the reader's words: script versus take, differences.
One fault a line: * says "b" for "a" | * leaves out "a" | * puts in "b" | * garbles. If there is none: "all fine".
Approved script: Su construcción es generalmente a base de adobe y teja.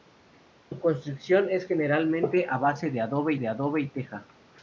* puts in "de adobe"